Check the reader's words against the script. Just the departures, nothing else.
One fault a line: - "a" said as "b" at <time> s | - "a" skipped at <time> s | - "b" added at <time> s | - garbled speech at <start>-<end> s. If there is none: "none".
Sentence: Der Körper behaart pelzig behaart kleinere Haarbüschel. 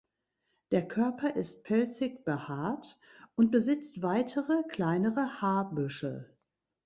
- "behaart" said as "ist" at 1.4 s
- "und besitzt weitere" added at 3.4 s